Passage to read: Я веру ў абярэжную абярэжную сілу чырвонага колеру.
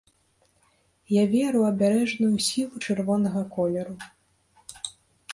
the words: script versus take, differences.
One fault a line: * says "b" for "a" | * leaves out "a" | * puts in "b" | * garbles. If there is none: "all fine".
* leaves out "абярэжную"